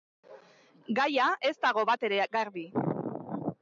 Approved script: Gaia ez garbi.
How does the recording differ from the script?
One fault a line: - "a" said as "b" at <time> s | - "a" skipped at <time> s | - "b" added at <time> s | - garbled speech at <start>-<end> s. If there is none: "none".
- "dago batere" added at 1.7 s